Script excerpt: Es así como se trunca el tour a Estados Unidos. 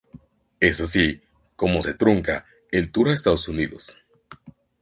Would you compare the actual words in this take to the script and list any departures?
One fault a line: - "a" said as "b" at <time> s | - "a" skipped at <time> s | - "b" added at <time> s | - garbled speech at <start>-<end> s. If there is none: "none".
none